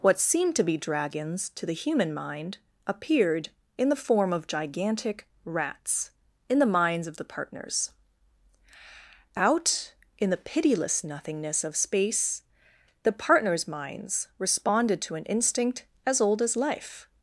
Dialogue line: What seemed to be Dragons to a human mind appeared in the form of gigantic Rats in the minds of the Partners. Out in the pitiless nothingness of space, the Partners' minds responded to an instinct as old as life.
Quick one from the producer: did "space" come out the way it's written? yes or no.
yes